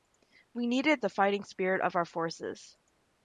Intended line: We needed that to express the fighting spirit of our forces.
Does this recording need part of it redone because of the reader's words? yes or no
yes